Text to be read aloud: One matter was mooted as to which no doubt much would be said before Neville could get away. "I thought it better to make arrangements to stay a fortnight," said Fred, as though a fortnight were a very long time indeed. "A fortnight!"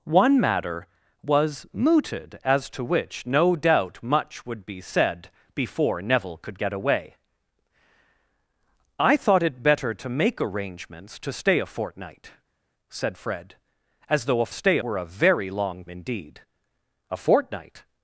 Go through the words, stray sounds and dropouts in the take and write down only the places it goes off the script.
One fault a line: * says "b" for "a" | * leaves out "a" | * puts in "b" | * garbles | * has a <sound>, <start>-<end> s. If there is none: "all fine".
* says "stay" for "fortnight"
* leaves out "time"